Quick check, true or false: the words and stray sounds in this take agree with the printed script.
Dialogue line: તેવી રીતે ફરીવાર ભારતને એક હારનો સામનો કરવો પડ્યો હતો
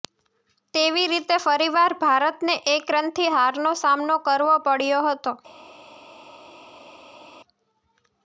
false